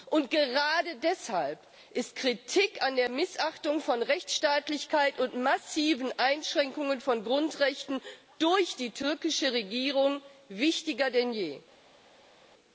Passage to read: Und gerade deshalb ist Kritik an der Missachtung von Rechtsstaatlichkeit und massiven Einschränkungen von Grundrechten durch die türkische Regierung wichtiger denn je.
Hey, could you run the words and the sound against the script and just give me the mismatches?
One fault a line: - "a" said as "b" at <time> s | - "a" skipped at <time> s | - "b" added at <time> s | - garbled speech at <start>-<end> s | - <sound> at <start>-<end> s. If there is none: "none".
none